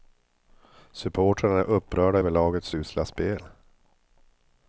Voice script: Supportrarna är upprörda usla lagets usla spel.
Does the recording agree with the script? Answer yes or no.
no